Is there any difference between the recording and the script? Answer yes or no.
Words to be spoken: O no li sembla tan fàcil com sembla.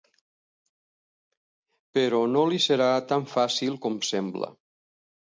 yes